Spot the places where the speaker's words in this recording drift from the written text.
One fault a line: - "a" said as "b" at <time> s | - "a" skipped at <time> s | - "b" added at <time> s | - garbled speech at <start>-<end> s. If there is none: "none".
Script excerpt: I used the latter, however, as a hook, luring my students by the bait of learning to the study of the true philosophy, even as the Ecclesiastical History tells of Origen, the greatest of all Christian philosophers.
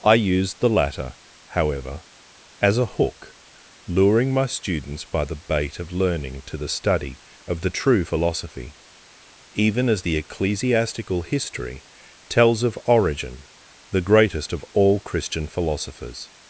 none